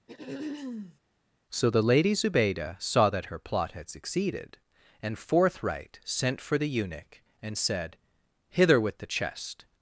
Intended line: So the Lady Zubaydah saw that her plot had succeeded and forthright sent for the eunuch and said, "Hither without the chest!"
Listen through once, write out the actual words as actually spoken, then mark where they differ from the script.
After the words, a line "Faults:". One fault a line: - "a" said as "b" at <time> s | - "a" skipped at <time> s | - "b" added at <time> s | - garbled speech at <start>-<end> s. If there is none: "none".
So the Lady Zubaydah saw that her plot had succeeded and forthright sent for the eunuch and said, "Hither with the chest!"
Faults:
- "without" said as "with" at 8.8 s